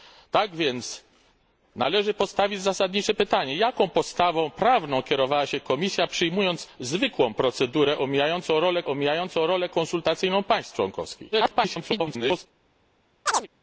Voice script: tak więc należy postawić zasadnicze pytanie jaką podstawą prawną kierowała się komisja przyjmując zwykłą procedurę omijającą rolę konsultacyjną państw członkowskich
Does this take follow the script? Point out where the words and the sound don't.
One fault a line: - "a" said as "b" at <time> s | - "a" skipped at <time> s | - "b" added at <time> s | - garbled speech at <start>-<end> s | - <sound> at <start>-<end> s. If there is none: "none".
- "omijającą rolę" added at 8.9 s
- garbled speech at 11.3-12.5 s
- chirp at 13.3-13.5 s